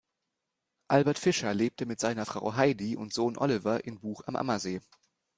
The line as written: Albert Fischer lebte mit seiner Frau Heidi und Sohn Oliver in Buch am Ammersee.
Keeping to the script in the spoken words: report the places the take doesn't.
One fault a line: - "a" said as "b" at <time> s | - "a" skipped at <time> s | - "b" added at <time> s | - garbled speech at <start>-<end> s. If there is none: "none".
none